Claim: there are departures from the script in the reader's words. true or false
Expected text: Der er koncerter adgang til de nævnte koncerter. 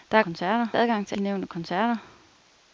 false